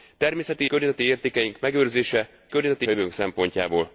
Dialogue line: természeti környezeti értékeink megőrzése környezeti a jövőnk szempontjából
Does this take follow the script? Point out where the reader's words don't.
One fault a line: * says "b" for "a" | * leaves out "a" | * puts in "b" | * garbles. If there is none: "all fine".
all fine